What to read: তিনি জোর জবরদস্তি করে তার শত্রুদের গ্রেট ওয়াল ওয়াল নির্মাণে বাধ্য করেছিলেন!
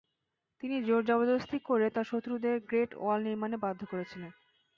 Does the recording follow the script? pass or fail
fail